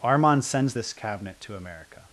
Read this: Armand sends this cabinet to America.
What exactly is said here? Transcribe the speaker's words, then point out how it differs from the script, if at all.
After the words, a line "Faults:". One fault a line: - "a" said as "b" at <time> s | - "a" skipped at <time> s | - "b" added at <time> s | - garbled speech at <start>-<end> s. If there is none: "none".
Armand sends this cabinet to America.
Faults:
none